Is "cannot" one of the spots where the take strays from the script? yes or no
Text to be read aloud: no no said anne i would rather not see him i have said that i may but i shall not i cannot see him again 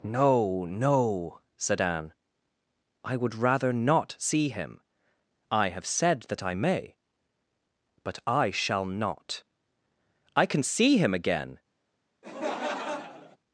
yes